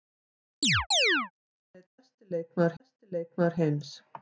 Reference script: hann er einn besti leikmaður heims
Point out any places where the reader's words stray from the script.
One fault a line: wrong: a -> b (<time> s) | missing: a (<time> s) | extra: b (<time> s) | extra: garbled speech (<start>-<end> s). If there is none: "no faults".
extra: besti leikmaður (2.8 s)